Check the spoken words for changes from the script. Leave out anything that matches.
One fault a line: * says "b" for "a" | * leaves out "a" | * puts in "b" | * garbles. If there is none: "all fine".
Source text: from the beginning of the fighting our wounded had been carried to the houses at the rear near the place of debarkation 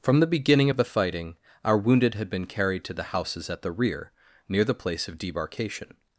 all fine